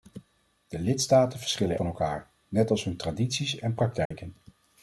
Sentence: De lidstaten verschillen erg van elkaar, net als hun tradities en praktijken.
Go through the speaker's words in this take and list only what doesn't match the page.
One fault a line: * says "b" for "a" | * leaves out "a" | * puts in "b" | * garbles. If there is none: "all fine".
* leaves out "erg"